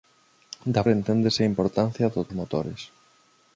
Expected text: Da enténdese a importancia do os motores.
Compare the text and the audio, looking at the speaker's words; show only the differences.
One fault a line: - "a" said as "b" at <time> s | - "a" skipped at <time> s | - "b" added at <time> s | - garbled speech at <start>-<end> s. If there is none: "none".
none